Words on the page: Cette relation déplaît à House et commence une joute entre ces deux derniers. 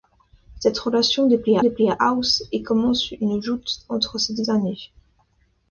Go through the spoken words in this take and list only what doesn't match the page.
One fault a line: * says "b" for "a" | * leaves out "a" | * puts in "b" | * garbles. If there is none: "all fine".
* puts in "déplaît"